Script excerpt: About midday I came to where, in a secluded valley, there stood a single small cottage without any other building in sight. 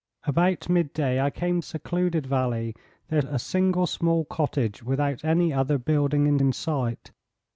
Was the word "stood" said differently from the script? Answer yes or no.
yes